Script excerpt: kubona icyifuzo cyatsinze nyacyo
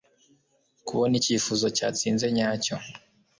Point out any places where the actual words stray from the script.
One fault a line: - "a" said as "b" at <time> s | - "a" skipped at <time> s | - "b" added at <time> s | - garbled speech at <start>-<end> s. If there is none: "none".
none